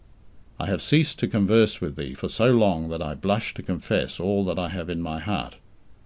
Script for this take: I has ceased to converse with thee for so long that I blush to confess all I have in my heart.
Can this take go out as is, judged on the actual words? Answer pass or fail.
fail